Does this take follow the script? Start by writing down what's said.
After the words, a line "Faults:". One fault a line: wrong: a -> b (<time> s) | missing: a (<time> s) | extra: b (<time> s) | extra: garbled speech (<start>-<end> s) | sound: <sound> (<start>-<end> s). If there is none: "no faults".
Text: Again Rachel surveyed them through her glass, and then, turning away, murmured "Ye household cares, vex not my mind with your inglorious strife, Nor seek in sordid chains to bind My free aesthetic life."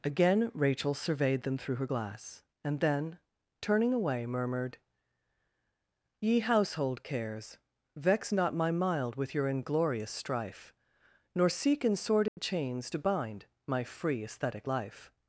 Again Rachel surveyed them through her glass, and then, turning away, murmured "Ye household cares, vex not my mild with your inglorious strife, Nor seek in sordid chains to bind My free aesthetic life."
Faults:
wrong: mind -> mild (8.7 s)
sound: dropout (12.3-12.4 s)